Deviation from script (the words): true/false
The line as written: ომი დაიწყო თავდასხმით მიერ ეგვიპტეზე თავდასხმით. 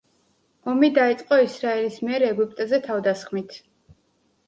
true